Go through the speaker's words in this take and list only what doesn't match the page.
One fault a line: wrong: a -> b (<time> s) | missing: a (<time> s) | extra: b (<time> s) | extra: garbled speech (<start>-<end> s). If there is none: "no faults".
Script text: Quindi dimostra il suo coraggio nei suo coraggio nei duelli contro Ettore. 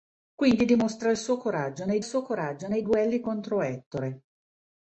no faults